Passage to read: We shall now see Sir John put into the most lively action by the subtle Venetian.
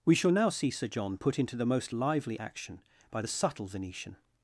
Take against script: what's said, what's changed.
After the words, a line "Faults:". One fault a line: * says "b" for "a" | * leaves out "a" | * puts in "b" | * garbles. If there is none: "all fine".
We shall now see Sir John put into the most lively action by the subtle Venetian.
Faults:
all fine